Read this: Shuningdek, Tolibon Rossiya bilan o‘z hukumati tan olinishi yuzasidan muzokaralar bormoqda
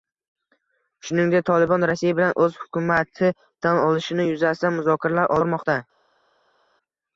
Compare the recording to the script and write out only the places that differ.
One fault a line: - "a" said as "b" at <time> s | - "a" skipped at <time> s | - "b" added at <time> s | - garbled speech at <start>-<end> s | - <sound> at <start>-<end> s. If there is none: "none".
none